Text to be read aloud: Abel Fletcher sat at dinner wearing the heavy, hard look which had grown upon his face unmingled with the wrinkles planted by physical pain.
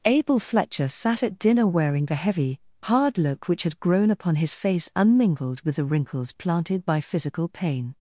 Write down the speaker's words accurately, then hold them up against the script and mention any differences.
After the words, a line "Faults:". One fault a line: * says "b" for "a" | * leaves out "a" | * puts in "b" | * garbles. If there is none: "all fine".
Abel Fletcher sat at dinner wearing the heavy, hard look which had grown upon his face unmingled with the wrinkles planted by physical pain.
Faults:
all fine